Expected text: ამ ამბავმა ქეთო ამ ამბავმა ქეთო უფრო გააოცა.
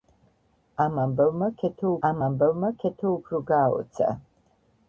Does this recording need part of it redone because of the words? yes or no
no